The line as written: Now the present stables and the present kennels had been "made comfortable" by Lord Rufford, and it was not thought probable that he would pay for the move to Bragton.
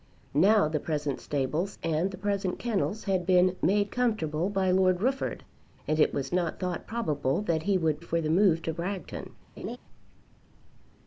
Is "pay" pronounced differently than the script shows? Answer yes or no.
yes